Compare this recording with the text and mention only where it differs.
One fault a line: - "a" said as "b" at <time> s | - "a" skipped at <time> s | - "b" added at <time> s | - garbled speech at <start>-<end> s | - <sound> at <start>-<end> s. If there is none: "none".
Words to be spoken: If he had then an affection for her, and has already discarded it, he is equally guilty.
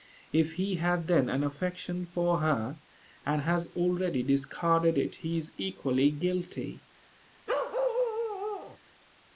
- bark at 7.5-8.8 s